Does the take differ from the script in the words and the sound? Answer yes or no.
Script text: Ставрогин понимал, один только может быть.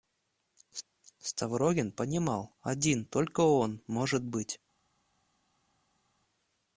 yes